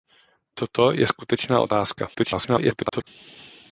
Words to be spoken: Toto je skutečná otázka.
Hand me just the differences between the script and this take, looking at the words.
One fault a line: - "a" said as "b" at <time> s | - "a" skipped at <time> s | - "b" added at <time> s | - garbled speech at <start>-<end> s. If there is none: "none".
- garbled speech at 2.1-3.1 s